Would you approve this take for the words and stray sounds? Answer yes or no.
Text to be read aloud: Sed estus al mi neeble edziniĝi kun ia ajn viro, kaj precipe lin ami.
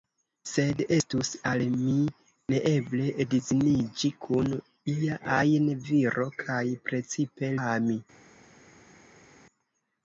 no